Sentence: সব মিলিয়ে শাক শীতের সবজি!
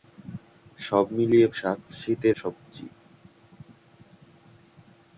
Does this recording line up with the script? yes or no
yes